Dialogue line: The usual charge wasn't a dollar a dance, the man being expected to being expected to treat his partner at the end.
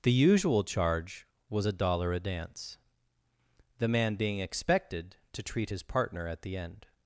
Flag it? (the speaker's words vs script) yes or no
yes